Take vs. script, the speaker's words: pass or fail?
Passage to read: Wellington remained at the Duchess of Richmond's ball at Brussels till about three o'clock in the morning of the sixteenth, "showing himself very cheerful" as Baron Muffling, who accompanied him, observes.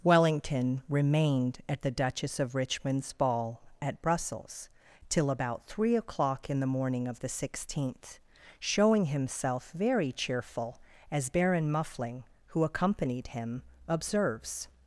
pass